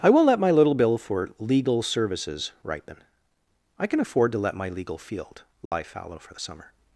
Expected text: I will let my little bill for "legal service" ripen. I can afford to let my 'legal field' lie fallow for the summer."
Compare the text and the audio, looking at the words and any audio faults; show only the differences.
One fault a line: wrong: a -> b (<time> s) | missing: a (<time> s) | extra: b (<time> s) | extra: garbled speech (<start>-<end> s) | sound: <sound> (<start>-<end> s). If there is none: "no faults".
wrong: service -> services (1.8 s)
sound: dropout (5.7-5.7 s)